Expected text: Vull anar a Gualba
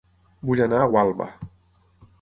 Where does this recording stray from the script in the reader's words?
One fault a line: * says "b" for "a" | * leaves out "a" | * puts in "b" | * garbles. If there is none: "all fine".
all fine